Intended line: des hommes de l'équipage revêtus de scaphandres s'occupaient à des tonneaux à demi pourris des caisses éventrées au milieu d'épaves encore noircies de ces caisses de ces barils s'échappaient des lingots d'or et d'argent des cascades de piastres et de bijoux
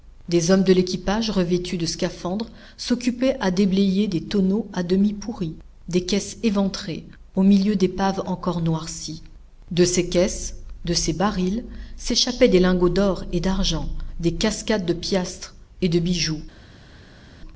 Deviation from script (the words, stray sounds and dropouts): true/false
true